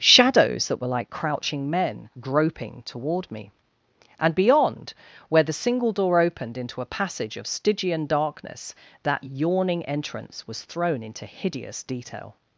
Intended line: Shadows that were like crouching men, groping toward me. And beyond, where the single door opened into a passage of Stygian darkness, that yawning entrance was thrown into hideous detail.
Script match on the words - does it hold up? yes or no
yes